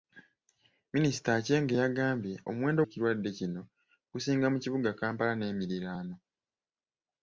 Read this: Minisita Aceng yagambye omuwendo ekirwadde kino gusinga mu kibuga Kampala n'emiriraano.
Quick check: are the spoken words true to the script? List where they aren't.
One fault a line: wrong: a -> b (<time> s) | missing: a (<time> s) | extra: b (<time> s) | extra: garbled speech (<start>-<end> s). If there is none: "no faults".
no faults